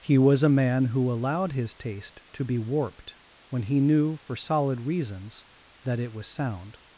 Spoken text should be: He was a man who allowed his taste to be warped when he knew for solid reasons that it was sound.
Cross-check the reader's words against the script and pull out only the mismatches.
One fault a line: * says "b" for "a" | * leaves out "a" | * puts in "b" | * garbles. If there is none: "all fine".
all fine